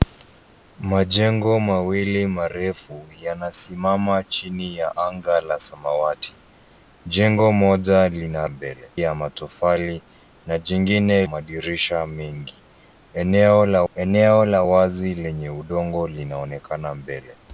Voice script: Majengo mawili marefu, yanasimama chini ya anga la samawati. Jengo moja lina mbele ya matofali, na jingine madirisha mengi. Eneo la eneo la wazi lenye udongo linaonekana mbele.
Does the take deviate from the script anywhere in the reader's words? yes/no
no